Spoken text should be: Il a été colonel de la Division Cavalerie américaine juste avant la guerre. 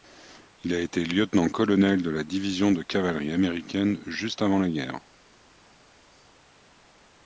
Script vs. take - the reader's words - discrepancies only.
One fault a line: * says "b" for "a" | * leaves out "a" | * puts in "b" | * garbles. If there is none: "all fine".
* puts in "lieutenant"
* puts in "de"